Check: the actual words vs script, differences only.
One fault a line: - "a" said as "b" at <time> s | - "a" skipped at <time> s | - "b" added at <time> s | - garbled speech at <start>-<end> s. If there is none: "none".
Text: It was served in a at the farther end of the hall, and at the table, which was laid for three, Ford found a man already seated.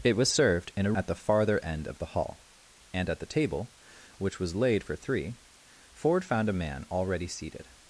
none